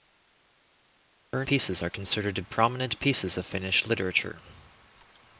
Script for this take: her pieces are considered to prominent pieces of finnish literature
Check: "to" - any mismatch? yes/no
no